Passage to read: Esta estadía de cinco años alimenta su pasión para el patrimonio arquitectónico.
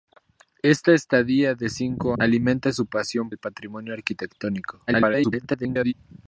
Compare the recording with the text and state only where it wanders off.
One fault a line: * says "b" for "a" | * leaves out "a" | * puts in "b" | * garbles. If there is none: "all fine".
* leaves out "años"
* leaves out "para"
* garbles